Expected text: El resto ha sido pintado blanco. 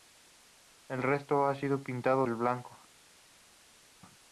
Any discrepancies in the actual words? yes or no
no